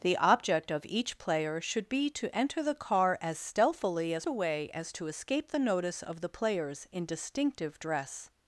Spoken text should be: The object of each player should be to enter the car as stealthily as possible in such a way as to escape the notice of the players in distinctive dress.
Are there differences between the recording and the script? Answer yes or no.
yes